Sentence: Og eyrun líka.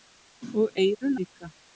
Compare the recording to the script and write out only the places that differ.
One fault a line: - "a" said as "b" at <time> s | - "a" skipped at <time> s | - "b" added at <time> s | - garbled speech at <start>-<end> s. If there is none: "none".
none